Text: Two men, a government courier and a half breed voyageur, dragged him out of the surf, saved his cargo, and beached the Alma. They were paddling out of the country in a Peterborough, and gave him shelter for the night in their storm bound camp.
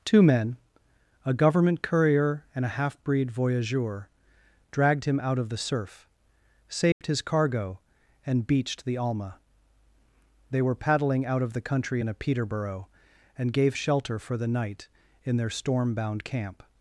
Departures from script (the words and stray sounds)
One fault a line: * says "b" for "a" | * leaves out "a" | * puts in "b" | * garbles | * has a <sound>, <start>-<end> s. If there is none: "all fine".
* has a dropout, 6.9-7.0 s
* leaves out "him"